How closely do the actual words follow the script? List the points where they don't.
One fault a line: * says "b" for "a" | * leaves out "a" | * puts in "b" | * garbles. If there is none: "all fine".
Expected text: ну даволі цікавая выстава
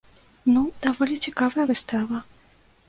all fine